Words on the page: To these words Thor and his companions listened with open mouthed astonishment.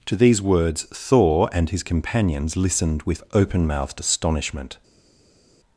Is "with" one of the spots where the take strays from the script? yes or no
no